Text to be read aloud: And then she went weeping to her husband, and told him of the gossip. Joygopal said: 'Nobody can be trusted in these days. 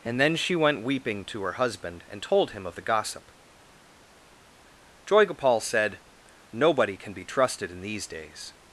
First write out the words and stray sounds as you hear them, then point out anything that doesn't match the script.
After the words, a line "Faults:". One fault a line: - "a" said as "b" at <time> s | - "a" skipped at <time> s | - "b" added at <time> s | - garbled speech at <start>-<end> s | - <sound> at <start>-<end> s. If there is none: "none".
And then she went weeping to her husband, and told him of the gossip. Joygopal said: 'Nobody can be trusted in these days.
Faults:
none